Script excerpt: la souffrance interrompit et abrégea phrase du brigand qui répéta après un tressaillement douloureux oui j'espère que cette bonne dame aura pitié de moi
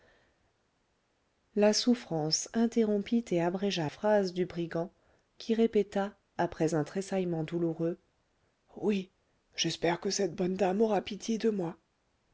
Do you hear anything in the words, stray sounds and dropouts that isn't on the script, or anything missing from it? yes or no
no